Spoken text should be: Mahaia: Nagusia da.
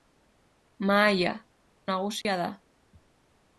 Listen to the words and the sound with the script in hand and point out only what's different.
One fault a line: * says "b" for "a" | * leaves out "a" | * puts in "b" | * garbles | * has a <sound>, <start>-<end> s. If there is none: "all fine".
* has a dropout, 2.2-2.2 s